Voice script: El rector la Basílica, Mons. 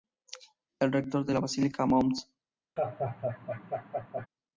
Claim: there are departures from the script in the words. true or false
true